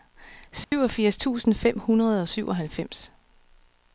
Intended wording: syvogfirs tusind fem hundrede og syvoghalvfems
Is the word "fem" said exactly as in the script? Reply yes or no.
yes